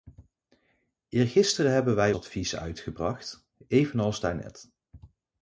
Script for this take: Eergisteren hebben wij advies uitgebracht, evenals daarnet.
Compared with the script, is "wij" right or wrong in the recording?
right